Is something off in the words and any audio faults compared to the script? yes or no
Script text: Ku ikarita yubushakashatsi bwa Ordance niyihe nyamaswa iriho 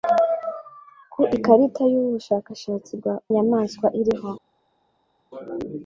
yes